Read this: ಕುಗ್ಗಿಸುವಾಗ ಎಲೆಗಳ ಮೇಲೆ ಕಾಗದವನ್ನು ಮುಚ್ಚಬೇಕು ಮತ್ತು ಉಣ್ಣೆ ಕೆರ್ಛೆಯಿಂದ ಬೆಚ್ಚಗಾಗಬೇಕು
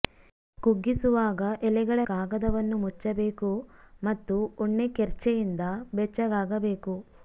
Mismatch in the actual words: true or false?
true